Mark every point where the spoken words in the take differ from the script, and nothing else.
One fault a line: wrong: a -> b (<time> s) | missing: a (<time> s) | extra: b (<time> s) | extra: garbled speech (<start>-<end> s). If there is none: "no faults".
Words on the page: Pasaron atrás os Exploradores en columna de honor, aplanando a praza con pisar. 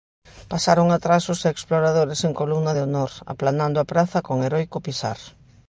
extra: heroico (4.5 s)